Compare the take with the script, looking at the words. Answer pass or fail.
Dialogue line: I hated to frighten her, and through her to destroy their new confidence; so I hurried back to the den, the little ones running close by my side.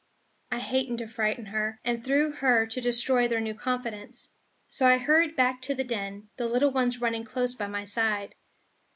pass